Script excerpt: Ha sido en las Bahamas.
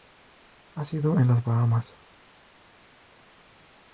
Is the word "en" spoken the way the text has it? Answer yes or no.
yes